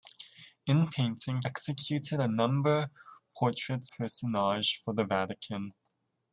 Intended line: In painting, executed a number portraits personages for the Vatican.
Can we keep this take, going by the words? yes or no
yes